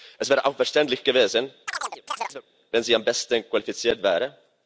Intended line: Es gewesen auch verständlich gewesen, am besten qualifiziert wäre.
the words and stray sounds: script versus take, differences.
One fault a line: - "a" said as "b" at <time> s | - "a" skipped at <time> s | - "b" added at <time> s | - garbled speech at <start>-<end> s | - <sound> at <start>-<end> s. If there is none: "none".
- "gewesen" said as "wäre" at 0.3 s
- chirp at 1.7-2.4 s
- "wenn sie" added at 2.7 s